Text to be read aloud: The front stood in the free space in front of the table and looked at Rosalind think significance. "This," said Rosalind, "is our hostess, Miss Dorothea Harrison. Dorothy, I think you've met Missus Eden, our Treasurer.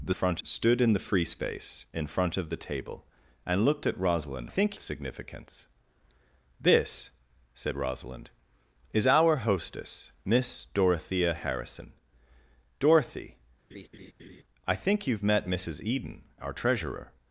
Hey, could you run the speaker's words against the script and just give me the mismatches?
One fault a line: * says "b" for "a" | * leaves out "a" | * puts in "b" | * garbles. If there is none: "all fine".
all fine